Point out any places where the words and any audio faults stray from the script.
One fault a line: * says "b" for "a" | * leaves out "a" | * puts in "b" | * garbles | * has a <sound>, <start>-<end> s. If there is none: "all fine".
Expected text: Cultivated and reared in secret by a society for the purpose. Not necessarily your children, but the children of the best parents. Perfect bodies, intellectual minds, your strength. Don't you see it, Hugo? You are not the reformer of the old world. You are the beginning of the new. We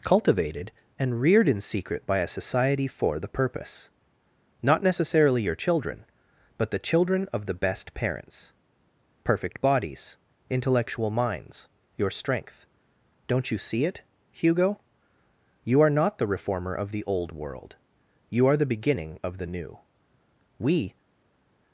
all fine